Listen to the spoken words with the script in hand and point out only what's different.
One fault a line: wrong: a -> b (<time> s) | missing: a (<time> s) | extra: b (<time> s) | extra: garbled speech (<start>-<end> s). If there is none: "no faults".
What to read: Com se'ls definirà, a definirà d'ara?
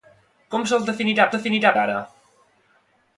no faults